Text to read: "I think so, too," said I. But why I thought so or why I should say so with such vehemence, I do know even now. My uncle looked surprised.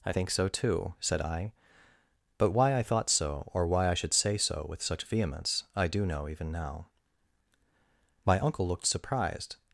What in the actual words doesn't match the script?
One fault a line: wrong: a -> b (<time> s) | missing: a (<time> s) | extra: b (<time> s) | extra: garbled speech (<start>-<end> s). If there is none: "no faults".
no faults